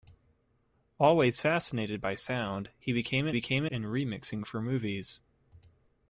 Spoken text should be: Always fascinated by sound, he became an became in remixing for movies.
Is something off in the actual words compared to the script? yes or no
no